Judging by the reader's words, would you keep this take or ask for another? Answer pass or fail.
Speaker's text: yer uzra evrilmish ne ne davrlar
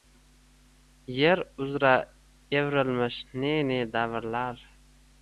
pass